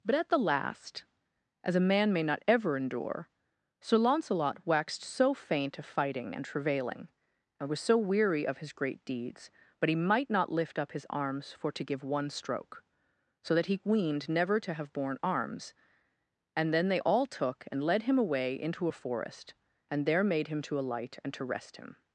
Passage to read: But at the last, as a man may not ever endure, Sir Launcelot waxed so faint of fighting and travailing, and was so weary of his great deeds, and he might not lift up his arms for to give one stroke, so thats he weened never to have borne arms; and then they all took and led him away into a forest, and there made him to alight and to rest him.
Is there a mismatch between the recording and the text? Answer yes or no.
yes